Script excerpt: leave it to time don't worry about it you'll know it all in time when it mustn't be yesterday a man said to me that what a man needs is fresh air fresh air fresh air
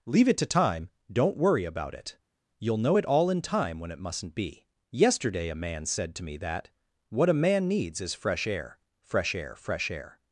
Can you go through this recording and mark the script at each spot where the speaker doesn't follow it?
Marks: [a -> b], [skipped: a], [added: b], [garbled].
leave it to time don't worry about it you'll know it all in time when it mustn't be yesterday a man said to me that what a man needs is fresh air fresh air fresh air